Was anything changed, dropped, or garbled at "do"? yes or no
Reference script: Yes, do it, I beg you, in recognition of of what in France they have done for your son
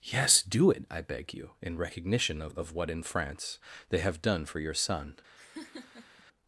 no